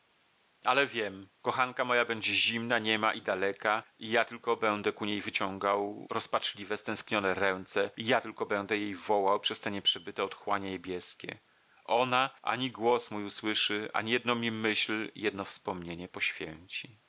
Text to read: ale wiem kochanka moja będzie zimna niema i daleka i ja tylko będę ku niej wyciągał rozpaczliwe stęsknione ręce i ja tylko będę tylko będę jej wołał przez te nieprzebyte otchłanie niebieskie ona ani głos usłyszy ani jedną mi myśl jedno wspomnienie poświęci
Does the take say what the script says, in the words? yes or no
no